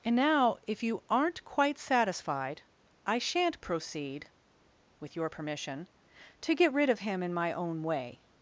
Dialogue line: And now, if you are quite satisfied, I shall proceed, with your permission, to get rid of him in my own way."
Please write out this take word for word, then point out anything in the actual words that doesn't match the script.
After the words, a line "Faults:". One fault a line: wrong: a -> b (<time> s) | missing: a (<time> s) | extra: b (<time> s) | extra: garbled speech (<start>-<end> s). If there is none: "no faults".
And now, if you aren't quite satisfied, I shan't proceed, with your permission, to get rid of him in my own way."
Faults:
wrong: are -> aren't (1.1 s)
wrong: shall -> shan't (3.2 s)